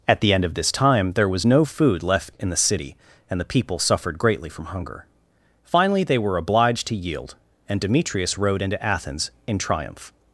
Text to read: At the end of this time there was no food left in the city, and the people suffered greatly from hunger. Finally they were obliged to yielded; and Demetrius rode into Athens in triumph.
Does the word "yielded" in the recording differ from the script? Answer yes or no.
yes